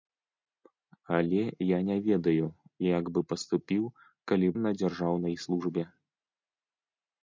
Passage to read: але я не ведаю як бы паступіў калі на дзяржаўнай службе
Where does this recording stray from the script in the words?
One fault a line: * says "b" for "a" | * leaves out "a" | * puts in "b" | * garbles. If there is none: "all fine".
all fine